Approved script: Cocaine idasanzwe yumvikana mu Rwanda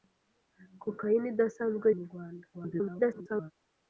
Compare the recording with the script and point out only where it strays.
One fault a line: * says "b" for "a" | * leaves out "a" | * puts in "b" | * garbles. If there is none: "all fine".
* leaves out "yumvikana"
* garbles